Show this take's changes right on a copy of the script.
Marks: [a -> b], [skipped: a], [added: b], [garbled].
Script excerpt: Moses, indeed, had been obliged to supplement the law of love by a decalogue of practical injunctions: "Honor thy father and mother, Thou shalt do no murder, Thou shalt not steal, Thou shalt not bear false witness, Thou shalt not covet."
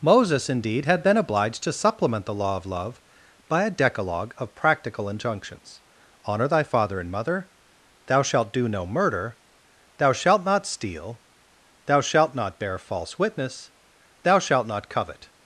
Moses, indeed, had been obliged to supplement the law of love by a decalogue of practical injunctions: "Honor thy father and mother, Thou shalt do no murder, Thou shalt not steal, Thou shalt not bear false witness, Thou shalt not covet."